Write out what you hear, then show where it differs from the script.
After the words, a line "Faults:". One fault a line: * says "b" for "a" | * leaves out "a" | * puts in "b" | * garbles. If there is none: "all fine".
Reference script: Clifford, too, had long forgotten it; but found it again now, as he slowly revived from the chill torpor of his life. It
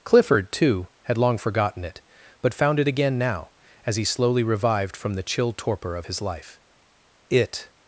Clifford, too, had long forgotten it; but found it again now, as he slowly revived from the chill torpor of his life. It
Faults:
all fine